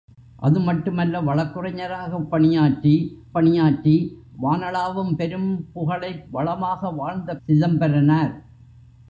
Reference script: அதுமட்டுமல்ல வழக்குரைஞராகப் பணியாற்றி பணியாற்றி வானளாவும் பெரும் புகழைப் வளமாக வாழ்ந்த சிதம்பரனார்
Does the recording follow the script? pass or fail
pass